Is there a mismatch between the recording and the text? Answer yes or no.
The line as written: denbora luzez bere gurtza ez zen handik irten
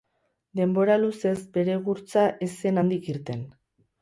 no